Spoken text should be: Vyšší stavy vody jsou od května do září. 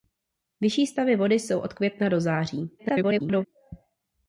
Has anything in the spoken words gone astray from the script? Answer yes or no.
yes